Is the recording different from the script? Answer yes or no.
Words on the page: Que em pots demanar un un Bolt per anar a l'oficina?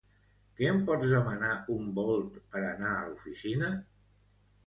yes